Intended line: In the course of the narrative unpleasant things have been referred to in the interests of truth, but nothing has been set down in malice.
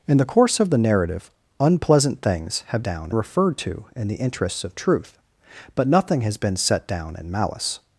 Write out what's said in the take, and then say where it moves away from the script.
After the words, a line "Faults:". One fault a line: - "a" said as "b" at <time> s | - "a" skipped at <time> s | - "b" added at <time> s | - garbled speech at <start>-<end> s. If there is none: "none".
In the course of the narrative unpleasant things have down referred to in the interests of truth, but nothing has been set down in malice.
Faults:
- "been" said as "down" at 2.8 s